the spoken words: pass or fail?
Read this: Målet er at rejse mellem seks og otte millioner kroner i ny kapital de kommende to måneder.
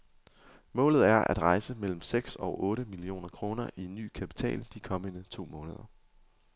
pass